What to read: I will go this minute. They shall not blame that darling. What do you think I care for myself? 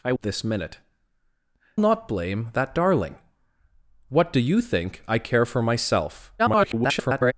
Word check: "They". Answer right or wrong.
wrong